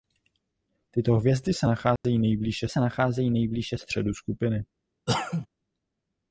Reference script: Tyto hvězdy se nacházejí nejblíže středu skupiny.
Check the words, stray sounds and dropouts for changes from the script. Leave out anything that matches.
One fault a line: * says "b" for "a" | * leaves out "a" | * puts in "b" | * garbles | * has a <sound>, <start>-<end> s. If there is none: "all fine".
* has a dropout, 2.0-2.0 s
* puts in "se nacházejí nejblíže"
* has a cough, 5.1-5.5 s